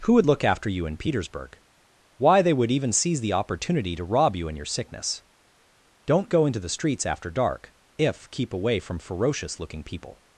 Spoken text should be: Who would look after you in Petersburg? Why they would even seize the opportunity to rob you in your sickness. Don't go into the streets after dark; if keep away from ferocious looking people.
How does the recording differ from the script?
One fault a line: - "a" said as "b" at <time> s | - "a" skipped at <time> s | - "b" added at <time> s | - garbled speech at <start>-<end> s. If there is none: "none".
none